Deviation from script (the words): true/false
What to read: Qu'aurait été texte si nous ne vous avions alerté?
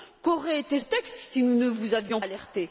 false